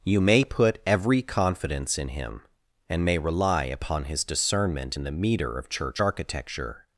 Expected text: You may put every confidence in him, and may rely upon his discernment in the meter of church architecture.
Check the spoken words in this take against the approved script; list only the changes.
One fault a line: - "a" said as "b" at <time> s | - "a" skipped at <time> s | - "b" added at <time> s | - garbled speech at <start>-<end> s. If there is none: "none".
none